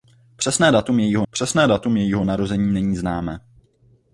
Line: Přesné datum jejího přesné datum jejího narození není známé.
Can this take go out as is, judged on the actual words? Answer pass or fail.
pass